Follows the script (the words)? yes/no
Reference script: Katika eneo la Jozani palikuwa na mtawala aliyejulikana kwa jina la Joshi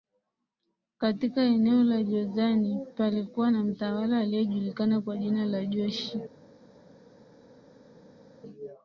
yes